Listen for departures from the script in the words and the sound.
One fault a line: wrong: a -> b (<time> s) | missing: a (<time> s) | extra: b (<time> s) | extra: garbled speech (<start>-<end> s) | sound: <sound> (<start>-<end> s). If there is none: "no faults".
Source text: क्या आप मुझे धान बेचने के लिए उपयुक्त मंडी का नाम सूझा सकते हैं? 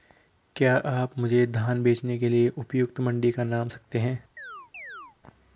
missing: सूझा (3.7 s)
sound: chirp (4.4-5.2 s)